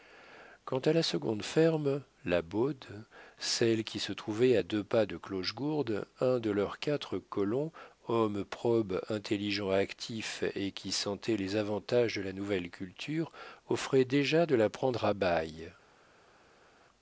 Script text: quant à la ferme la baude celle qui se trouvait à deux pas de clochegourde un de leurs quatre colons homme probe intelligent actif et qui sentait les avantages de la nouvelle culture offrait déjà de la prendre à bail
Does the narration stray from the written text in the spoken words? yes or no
yes